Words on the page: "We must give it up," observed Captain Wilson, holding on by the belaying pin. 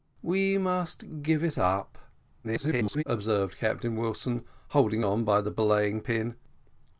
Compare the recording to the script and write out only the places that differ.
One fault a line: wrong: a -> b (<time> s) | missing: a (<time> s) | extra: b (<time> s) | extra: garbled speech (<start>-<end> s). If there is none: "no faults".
extra: garbled speech (2.4-3.0 s)